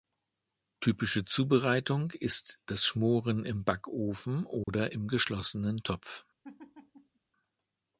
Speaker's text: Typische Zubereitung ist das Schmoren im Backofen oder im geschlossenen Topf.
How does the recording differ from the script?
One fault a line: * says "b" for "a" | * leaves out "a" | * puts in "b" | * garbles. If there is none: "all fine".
all fine